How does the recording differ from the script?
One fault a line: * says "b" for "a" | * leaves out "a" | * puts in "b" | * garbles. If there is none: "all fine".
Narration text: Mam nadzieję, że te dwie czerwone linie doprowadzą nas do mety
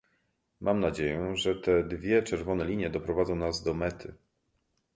all fine